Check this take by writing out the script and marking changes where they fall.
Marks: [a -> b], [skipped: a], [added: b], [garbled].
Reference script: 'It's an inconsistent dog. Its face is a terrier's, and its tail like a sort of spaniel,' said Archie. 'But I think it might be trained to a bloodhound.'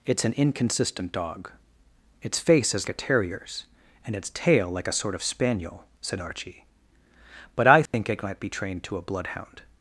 'It's an inconsistent dog. Its face is a terrier's, and its tail like a sort of spaniel,' said Archie. 'But I think it might be trained to a bloodhound.'